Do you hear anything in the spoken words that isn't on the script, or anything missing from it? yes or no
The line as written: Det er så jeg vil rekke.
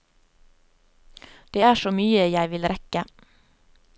yes